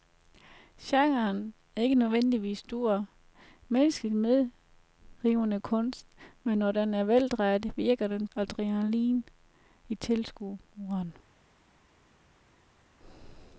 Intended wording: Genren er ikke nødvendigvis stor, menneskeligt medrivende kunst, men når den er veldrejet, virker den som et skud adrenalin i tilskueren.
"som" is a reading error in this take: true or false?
true